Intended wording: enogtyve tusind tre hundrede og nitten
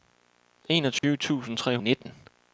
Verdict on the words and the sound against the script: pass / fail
fail